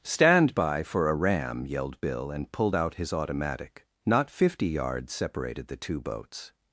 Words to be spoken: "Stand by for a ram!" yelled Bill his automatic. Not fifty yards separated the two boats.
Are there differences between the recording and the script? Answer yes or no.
yes